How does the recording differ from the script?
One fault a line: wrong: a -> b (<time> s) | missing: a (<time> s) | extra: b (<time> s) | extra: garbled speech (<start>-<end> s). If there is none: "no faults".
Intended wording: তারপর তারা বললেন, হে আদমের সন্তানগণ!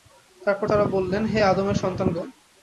no faults